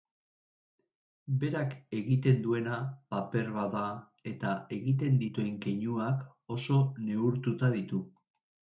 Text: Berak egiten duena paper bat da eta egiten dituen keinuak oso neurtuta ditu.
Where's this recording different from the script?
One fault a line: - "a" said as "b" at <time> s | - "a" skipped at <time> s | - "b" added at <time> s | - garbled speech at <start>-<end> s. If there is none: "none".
none